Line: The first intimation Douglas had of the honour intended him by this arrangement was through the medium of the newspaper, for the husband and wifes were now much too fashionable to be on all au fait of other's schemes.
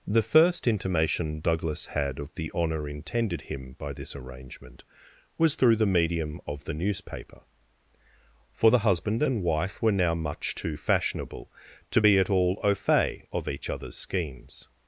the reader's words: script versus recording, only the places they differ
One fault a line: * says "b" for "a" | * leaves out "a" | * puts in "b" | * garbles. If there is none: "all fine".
* says "wife" for "wifes"
* says "at" for "on"
* puts in "each"